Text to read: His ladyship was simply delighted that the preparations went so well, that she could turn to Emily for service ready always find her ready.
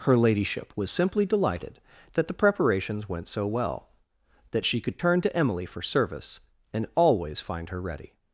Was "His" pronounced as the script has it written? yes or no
no